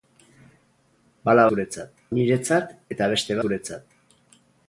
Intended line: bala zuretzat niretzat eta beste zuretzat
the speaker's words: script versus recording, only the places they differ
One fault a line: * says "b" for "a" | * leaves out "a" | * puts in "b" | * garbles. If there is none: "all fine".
all fine